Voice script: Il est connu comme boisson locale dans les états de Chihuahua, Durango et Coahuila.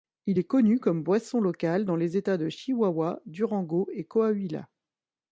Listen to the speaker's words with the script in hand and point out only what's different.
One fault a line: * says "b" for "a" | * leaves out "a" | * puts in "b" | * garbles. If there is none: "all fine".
all fine